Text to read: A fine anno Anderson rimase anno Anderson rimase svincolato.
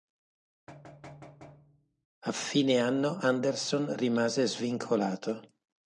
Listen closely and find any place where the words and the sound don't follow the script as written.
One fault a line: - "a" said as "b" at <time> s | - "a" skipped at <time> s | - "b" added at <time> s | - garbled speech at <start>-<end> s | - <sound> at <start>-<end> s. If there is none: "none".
- thud at 0.7-2.1 s
- "anno Anderson rimase" skipped at 4.5 s